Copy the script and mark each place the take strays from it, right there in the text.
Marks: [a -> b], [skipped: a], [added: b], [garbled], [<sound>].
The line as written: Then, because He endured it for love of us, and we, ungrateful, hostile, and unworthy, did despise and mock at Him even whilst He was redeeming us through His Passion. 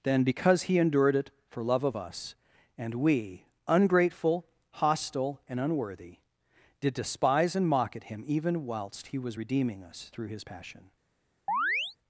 Then, because He endured it for love of us, and we, ungrateful, hostile, and unworthy, did despise and mock at Him even whilst He was redeeming us through His Passion. [chirp]